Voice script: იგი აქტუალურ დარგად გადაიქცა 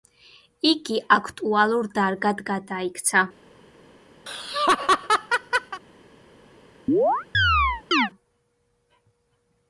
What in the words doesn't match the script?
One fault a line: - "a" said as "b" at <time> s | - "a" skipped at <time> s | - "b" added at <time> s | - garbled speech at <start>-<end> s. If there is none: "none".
none